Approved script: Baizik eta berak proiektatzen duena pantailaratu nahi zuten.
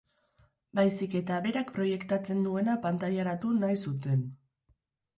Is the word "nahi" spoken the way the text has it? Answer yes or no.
yes